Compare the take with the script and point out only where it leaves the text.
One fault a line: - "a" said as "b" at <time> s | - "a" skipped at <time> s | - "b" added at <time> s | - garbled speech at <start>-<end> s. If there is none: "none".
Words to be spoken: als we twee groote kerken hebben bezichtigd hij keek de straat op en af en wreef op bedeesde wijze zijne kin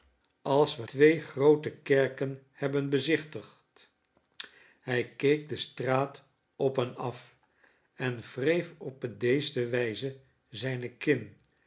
none